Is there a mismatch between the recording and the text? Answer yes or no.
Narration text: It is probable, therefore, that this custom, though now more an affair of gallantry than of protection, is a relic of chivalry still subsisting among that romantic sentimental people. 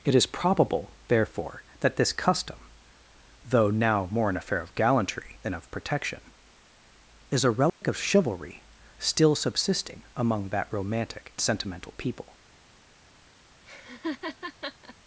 no